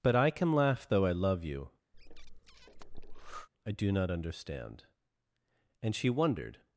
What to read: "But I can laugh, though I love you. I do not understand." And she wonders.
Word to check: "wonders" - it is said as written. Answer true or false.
false